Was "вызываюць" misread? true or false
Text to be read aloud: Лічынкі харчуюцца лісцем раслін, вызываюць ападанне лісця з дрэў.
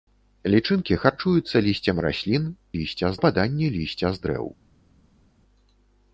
true